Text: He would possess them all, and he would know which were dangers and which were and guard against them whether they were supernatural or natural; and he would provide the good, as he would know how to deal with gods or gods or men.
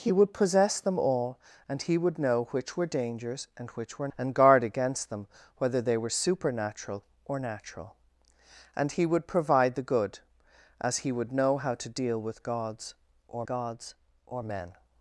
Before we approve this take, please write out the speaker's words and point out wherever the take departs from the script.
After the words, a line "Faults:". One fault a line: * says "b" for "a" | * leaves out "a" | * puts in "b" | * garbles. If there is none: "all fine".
He would possess them all, and he would know which were dangers and which were and guard against them whether they were supernatural or natural; and he would provide the good, as he would know how to deal with gods or gods or men.
Faults:
all fine